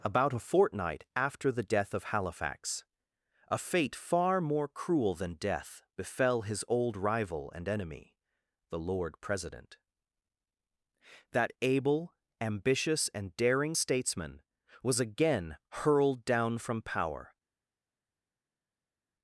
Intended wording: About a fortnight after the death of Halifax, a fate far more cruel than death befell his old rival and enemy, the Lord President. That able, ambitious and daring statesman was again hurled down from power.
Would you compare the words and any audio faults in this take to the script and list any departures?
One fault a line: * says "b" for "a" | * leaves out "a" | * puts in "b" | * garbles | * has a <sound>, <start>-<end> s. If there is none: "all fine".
all fine